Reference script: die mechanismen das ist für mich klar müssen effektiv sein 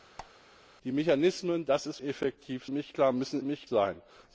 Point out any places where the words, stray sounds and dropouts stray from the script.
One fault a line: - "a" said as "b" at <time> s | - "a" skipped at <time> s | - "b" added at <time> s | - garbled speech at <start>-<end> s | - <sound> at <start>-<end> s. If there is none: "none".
- squeak at 0.2-0.3 s
- "für" said as "effektiv" at 2.0 s
- "effektiv" said as "mich" at 3.4 s